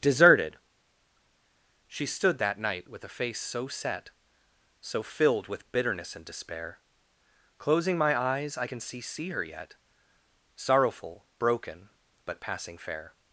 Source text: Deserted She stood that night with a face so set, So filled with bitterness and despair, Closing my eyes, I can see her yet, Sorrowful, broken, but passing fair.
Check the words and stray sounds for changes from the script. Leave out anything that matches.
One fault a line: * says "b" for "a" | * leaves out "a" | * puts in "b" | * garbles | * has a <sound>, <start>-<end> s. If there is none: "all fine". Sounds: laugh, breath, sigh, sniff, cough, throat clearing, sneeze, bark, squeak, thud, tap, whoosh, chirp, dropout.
* puts in "see"